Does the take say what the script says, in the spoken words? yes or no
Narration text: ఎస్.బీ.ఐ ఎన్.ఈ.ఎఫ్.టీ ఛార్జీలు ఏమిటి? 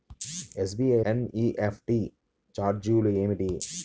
yes